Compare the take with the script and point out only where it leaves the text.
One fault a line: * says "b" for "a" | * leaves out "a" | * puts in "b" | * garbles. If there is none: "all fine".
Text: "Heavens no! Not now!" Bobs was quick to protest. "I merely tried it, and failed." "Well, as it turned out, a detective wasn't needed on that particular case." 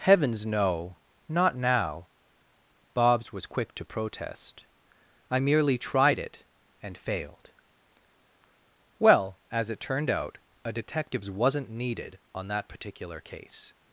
* says "detectives" for "detective"